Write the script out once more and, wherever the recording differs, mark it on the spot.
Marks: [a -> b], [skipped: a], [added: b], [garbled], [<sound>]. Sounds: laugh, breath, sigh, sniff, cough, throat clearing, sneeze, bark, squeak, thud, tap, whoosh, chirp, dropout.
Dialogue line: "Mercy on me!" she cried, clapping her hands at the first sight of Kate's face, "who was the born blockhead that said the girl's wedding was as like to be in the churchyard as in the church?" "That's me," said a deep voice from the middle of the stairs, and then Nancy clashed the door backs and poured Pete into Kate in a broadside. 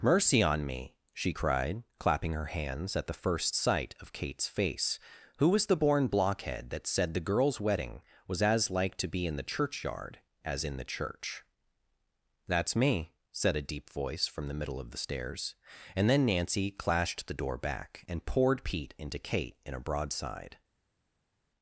"Mercy on me!" she cried, clapping her hands at the first sight of Kate's face, "who was the born blockhead that said the girl's wedding was as like to be in the churchyard as in the church?" "That's me," said a deep voice from the middle of the stairs, and then Nancy clashed the door [backs -> back] and poured Pete into Kate in a broadside.